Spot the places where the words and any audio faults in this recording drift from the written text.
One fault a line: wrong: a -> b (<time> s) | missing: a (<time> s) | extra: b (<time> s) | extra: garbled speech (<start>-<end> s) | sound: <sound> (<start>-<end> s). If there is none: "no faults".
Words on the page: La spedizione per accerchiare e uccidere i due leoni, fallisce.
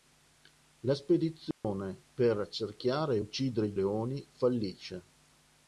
sound: dropout (1.5-1.6 s)
missing: due (3.7 s)